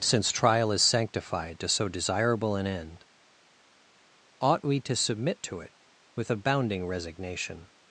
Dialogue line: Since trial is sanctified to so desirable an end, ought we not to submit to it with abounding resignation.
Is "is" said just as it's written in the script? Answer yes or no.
yes